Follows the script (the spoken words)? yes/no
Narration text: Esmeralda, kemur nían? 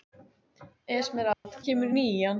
yes